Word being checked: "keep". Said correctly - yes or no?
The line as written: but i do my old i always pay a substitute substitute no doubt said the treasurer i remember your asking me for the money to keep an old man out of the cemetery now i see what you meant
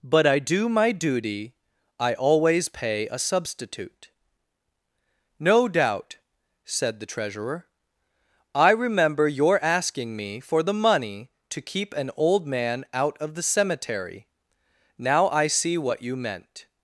yes